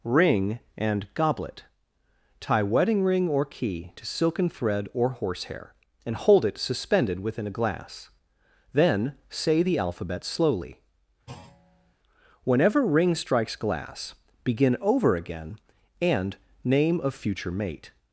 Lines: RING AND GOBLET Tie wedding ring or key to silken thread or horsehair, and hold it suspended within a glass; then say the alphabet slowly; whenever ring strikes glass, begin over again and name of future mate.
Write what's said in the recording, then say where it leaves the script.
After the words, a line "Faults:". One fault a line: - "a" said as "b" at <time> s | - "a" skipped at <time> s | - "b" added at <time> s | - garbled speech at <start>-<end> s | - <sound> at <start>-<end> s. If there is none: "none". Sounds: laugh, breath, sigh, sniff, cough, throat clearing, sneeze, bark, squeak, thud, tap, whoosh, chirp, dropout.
RING AND GOBLET Tie wedding ring or key to silken thread or horsehair, and hold it suspended within a glass; then say the alphabet slowly; whenever ring strikes glass, begin over again and name of future mate.
Faults:
- thud at 11.3-11.9 s